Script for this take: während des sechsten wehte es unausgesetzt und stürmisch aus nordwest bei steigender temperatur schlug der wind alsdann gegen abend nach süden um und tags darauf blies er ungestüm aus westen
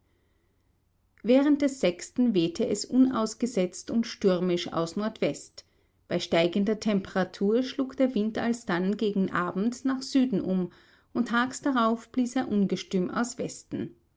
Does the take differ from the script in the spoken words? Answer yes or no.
no